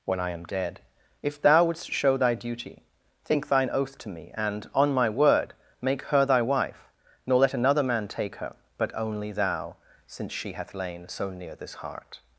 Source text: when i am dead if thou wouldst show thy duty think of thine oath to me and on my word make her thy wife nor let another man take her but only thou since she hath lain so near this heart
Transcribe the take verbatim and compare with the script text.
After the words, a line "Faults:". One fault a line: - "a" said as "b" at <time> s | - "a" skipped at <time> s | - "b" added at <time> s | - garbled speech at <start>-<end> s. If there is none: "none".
when i am dead if thou wouldst show thy duty think thine oath to me and on my word make her thy wife nor let another man take her but only thou since she hath lain so near this heart
Faults:
- "of" skipped at 3.5 s